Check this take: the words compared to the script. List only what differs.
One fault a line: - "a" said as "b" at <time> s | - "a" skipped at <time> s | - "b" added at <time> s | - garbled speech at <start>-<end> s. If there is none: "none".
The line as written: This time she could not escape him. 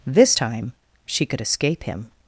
- "not" skipped at 1.4 s